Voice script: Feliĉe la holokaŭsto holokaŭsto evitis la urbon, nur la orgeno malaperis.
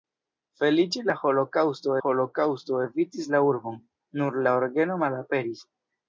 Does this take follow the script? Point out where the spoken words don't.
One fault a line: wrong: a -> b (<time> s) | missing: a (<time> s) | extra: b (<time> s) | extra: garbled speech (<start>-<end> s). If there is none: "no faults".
no faults